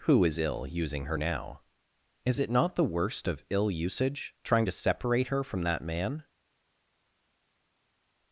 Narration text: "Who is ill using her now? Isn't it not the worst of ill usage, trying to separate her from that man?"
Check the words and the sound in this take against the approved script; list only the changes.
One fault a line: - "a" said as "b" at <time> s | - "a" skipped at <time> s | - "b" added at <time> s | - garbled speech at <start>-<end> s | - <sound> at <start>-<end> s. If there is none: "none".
- "Isn't" said as "Is" at 2.2 s